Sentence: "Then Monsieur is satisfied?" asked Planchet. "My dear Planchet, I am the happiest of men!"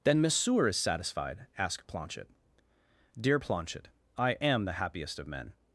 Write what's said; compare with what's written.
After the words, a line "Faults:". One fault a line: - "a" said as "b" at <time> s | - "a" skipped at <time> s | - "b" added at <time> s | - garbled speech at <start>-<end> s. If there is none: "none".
"Then Monsieur is satisfied?" asked Planchet. "dear Planchet, I am the happiest of men!"
Faults:
- "My" skipped at 2.3 s